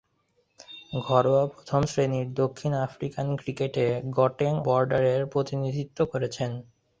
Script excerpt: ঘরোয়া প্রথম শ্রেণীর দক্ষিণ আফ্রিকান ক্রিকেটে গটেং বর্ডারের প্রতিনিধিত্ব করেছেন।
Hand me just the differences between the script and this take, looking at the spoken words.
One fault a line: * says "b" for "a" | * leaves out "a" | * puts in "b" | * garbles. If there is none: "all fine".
all fine